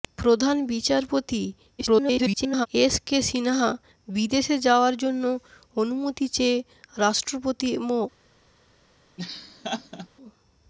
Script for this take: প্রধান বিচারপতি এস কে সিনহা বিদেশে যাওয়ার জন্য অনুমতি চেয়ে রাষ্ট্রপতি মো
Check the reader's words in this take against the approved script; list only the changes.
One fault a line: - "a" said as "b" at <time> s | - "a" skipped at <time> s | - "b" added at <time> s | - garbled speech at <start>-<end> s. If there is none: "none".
- garbled speech at 1.8-2.7 s